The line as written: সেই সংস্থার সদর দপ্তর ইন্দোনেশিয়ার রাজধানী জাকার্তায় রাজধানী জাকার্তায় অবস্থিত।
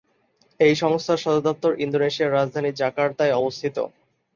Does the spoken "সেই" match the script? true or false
false